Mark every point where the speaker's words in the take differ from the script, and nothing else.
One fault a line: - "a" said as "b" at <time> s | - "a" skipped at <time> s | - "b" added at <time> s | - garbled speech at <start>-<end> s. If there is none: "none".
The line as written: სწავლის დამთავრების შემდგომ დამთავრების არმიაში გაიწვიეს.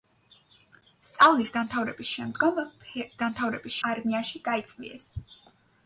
none